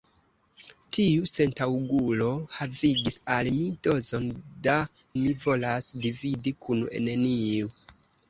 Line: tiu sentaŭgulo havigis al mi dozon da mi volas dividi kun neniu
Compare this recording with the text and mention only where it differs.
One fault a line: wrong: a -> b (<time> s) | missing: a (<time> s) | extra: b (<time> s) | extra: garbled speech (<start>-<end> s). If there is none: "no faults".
no faults